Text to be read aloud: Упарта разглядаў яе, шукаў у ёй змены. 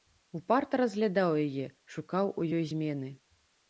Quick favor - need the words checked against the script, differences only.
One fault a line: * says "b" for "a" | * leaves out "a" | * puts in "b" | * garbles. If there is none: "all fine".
all fine